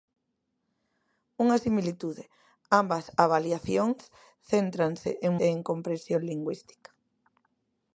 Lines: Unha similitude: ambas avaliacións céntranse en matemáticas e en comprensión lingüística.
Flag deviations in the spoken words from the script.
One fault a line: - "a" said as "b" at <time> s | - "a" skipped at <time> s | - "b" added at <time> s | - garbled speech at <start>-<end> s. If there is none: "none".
- "matemáticas" skipped at 5.3 s